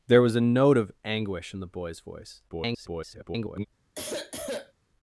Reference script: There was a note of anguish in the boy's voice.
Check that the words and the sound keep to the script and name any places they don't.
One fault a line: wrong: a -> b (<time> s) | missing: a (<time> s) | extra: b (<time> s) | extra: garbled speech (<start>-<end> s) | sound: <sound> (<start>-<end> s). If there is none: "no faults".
extra: garbled speech (2.5-3.7 s)
sound: sniff (4.0-4.7 s)